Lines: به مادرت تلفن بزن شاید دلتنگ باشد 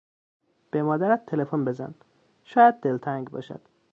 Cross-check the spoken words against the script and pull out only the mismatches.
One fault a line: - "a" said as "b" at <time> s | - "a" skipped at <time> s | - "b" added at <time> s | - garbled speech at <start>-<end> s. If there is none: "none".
none